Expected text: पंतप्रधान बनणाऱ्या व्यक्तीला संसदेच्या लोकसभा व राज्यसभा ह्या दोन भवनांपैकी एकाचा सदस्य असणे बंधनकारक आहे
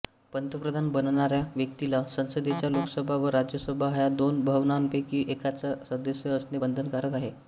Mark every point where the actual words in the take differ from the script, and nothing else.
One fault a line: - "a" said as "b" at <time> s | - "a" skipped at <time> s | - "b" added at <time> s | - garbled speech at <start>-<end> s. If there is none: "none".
none